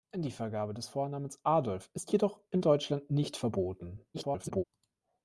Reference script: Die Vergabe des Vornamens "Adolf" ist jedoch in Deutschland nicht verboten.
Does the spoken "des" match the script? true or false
true